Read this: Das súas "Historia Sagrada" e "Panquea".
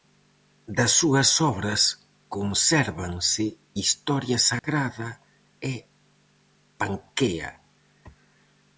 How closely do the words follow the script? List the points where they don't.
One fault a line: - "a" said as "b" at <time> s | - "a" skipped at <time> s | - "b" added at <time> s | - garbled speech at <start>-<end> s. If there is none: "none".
- "obras consérvanse" added at 1.5 s